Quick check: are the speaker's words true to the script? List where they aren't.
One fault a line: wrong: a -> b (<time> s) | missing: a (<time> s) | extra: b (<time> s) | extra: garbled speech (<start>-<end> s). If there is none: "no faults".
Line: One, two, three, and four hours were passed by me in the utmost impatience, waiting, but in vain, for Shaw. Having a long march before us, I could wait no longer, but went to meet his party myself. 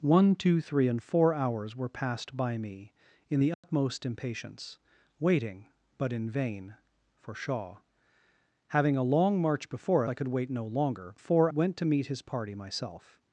missing: us (10.0 s)
wrong: but -> four (11.2 s)